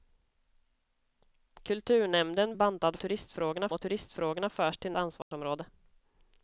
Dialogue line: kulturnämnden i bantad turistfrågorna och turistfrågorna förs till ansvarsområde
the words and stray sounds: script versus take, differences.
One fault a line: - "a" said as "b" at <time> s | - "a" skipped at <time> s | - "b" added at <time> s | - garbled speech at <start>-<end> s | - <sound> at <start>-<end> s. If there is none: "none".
- dropout at 5.2-5.3 s